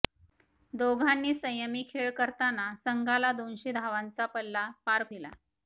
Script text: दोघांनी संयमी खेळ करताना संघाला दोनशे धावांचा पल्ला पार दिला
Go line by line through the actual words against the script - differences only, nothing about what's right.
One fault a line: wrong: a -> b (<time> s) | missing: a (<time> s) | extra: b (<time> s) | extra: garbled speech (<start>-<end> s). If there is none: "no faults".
no faults